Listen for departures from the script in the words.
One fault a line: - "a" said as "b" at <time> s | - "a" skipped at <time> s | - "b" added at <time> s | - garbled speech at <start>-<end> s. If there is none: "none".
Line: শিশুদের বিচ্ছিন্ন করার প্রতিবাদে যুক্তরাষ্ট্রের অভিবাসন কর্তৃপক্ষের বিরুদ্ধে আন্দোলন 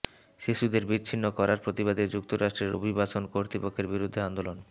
none